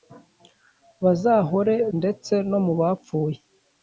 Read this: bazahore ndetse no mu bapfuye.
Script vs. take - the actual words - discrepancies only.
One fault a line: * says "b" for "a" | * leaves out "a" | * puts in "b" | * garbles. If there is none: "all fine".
all fine